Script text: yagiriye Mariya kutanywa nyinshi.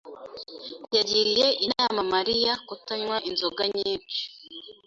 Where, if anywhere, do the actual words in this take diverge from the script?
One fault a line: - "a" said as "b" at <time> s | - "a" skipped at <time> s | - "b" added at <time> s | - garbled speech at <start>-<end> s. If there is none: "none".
- "inama" added at 1.6 s
- "inzoga" added at 3.3 s